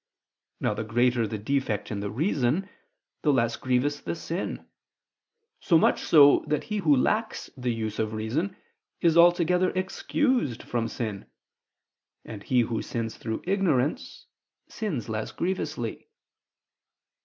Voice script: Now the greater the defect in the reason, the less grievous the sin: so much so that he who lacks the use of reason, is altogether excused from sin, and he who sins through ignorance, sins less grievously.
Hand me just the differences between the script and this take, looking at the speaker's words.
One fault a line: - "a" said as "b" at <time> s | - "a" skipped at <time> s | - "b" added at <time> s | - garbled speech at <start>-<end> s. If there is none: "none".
none